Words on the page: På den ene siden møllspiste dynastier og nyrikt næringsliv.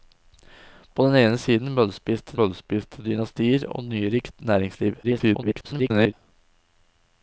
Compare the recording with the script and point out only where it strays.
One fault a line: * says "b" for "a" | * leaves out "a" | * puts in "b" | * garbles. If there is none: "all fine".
* puts in "møllspiste"
* garbles